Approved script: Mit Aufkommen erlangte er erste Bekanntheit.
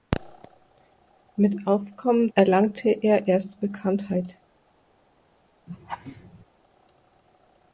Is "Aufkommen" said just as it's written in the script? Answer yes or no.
yes